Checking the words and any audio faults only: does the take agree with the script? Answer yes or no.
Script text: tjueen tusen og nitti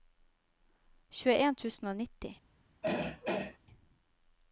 no